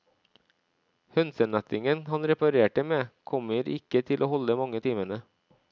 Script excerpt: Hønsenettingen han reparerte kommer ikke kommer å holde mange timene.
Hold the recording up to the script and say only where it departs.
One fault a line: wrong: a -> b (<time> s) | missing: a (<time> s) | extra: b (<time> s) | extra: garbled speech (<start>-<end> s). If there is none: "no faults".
extra: med (2.9 s)
wrong: kommer -> til (4.1 s)